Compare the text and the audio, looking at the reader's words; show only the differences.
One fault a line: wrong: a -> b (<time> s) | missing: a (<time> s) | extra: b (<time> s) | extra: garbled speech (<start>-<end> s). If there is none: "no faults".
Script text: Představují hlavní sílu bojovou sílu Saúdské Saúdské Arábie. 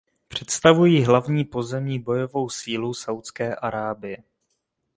wrong: sílu -> pozemní (1.4 s)
missing: Saúdské (3.5 s)